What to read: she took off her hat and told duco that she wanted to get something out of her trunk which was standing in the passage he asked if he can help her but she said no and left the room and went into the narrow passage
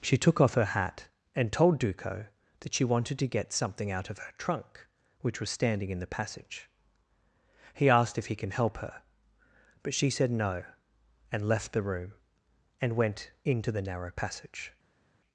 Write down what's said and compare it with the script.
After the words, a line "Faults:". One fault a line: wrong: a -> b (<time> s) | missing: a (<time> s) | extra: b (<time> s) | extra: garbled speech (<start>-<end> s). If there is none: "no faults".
she took off her hat and told duco that she wanted to get something out of her trunk which was standing in the passage he asked if he can help her but she said no and left the room and went into the narrow passage
Faults:
no faults